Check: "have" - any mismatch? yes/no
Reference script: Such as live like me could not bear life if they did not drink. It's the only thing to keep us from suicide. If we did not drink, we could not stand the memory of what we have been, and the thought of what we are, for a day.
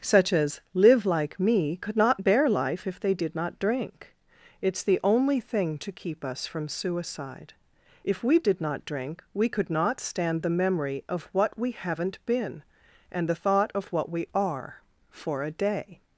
yes